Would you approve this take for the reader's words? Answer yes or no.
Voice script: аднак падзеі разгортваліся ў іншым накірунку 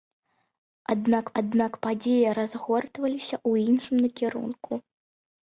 no